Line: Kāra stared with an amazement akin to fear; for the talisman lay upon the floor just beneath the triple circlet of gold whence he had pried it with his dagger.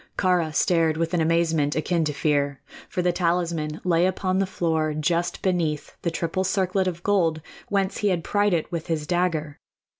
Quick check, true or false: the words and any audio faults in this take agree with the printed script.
true